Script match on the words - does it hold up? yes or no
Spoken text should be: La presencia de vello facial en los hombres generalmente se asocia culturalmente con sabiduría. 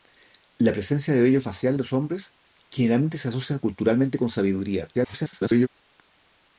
no